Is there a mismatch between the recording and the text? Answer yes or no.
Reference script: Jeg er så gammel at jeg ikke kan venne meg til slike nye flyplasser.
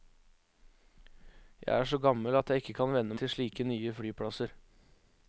yes